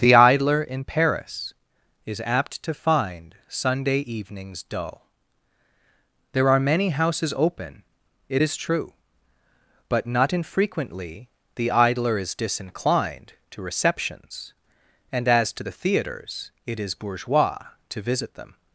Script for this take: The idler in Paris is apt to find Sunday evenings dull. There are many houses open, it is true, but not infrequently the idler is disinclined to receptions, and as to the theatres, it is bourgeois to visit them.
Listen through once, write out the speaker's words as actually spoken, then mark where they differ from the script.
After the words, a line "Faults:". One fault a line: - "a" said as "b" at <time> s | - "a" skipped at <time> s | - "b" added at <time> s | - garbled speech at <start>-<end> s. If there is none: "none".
The idler in Paris is apt to find Sunday evenings dull. There are many houses open, it is true, but not infrequently the idler is disinclined to receptions, and as to the theatres, it is bourgeois to visit them.
Faults:
none